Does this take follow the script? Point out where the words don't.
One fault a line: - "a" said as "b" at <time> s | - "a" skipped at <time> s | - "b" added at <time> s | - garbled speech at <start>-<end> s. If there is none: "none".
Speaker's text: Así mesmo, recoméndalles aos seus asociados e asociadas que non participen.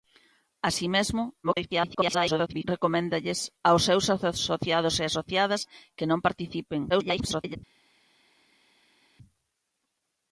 - garbled speech at 1.4-2.6 s
- garbled speech at 6.9-7.6 s